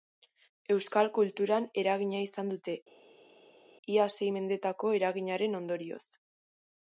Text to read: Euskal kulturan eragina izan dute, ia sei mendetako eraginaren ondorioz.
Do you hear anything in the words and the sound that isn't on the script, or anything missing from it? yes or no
no